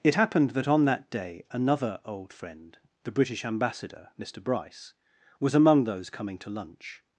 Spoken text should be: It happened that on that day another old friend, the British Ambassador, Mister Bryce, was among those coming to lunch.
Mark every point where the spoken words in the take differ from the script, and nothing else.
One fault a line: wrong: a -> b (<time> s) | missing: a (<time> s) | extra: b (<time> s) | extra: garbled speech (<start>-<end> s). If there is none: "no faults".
no faults